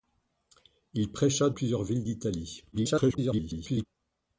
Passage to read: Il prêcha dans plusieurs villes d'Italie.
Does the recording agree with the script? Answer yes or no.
no